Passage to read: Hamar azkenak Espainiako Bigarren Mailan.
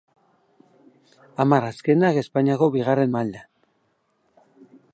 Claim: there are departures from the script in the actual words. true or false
false